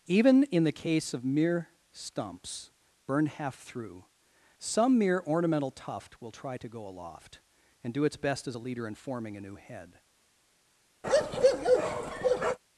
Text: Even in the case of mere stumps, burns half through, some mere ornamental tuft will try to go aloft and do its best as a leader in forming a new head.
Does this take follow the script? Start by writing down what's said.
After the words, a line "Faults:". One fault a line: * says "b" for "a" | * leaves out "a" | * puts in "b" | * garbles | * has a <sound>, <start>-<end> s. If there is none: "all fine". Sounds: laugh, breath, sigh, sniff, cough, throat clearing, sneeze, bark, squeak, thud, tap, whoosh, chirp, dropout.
Even in the case of mere stumps, burned half through, some mere ornamental tuft will try to go aloft and do its best as a leader in forming a new head.
Faults:
* says "burned" for "burns"
* has a bark, 11.0-12.6 s